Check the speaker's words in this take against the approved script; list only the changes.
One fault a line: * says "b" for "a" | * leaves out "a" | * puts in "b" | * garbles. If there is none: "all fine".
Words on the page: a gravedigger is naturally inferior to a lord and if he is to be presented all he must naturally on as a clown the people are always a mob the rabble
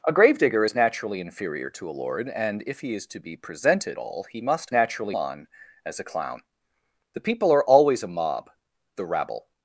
all fine